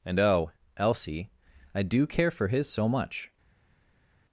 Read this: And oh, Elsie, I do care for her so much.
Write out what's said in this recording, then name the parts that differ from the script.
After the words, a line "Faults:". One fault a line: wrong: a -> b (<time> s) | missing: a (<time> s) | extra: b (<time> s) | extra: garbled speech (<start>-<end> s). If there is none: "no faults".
And oh, Elsie, I do care for his so much.
Faults:
wrong: her -> his (2.5 s)